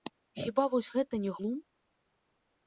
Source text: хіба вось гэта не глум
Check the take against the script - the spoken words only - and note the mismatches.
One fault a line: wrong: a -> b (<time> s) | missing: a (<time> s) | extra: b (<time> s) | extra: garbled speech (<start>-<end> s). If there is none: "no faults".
no faults